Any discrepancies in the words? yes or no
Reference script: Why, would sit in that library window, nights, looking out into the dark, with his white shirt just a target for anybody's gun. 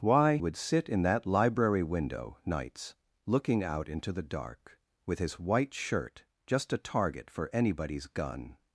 no